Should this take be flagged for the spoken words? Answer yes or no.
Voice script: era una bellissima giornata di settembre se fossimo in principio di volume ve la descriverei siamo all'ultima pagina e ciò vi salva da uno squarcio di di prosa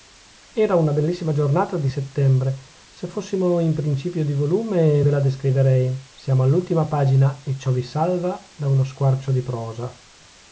yes